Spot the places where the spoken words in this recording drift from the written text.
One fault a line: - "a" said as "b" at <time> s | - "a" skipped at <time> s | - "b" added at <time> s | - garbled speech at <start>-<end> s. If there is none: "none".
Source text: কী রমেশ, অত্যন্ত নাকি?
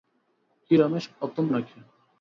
none